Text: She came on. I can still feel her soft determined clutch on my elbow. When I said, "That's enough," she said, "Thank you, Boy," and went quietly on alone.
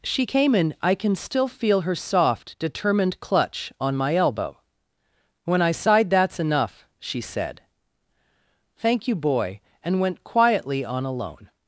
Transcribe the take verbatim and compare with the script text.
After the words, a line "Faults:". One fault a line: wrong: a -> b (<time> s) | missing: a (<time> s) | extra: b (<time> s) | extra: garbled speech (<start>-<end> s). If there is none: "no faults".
She came in. I can still feel her soft determined clutch on my elbow. When I sighed, "That's enough," she said, "Thank you, Boy," and went quietly on alone.
Faults:
wrong: on -> in (0.5 s)
wrong: said -> sighed (5.7 s)